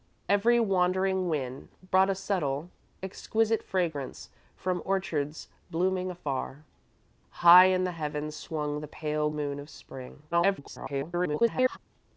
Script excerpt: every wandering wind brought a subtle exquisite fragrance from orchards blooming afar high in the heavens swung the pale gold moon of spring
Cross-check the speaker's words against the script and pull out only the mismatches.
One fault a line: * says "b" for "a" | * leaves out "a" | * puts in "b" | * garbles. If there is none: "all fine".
* leaves out "gold"
* garbles